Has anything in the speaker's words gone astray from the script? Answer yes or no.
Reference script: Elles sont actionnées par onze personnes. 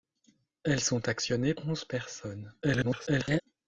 yes